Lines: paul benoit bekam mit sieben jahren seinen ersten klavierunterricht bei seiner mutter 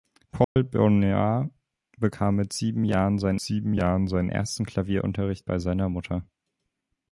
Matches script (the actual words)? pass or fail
fail